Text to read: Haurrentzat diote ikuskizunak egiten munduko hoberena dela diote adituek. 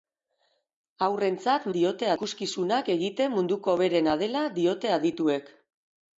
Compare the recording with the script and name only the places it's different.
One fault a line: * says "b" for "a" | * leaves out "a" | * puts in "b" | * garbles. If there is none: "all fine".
all fine